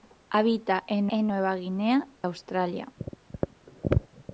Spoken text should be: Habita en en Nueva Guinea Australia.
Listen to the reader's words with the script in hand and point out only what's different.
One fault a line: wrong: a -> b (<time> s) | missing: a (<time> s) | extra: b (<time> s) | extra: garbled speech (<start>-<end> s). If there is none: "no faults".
no faults